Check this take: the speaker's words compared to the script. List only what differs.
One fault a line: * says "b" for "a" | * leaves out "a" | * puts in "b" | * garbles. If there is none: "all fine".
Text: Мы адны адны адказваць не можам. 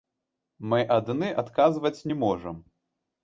* leaves out "адны"